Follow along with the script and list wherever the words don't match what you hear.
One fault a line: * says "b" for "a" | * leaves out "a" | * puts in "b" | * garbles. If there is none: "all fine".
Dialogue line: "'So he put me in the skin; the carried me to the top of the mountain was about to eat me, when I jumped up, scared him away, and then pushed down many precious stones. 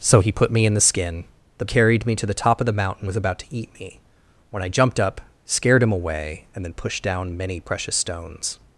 all fine